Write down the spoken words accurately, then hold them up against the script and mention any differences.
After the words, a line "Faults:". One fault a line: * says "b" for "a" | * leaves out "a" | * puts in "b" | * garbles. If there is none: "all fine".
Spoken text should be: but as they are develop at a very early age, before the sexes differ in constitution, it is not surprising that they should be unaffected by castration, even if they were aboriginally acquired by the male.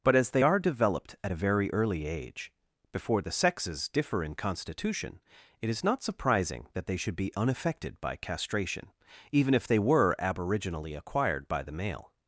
but as they are developed at a very early age, before the sexes differ in constitution, it is not surprising that they should be unaffected by castration, even if they were aboriginally acquired by the male.
Faults:
* says "developed" for "develop"